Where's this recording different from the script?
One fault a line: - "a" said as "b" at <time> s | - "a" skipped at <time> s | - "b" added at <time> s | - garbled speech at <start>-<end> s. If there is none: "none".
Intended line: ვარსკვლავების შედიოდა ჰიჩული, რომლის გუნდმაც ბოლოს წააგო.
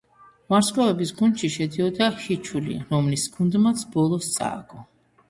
- "გუნდში" added at 1.2 s